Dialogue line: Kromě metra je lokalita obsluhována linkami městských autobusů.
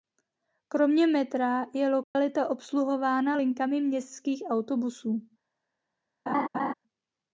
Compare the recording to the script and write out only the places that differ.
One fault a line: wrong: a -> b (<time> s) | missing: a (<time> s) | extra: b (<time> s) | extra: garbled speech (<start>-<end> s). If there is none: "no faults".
no faults